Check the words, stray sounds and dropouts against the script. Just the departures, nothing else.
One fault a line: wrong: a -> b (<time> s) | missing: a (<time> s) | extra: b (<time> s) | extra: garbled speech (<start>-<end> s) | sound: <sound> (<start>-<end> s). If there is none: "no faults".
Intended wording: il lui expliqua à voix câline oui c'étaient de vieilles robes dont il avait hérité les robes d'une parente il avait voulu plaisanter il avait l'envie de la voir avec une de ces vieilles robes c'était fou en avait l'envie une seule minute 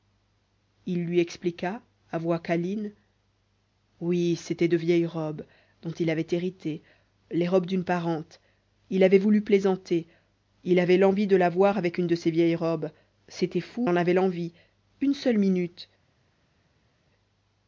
no faults